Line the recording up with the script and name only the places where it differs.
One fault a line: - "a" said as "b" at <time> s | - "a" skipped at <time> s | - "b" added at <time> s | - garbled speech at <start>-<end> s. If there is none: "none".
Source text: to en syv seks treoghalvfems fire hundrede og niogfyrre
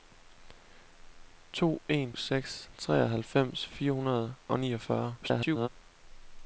- "syv" skipped at 2.1 s
- garbled speech at 5.2-5.7 s